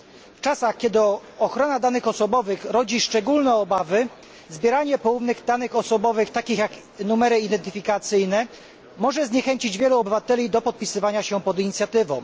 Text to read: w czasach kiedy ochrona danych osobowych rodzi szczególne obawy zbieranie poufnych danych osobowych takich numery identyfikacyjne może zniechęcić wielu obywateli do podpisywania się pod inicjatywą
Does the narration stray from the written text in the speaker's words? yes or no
yes